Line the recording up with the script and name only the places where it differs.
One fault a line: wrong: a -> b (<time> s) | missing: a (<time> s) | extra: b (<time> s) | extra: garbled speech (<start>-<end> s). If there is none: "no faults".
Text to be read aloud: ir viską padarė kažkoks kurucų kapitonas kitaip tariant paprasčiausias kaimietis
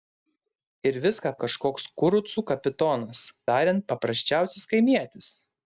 missing: padarė (1.3 s)
missing: kitaip (3.2 s)